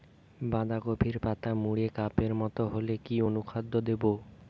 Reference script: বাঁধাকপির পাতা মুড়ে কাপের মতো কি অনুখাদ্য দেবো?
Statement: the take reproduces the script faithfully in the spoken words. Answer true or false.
false